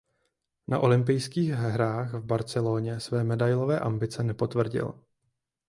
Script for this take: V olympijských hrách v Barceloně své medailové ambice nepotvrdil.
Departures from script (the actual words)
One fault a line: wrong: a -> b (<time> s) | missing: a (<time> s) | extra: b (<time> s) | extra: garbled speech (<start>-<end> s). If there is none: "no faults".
wrong: V -> Na (0.7 s)